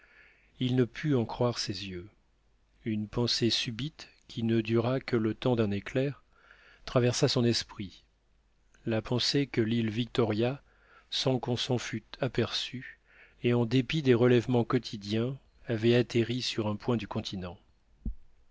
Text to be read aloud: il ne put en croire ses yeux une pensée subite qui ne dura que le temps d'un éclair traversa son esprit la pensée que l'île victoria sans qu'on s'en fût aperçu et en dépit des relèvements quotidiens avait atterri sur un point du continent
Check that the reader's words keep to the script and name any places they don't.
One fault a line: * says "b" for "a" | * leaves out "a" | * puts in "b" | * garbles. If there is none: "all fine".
all fine